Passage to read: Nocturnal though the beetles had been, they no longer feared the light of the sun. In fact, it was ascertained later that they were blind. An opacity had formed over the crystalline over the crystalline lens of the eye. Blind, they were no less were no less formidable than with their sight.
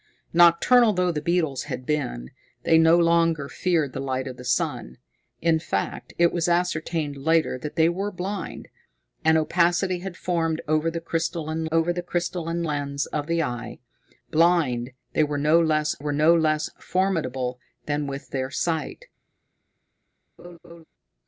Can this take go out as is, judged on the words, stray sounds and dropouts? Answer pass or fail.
fail